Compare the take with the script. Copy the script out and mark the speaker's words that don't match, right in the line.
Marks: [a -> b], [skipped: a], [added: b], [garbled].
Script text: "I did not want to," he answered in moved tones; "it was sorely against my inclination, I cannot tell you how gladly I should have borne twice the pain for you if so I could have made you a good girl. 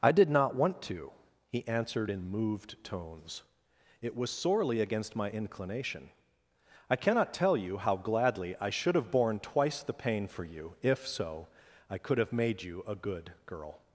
"I did not want to," he answered in moved tones; "it was sorely against my inclination, I cannot tell you how gladly I should have borne twice the pain for you if so I could have made you a good girl.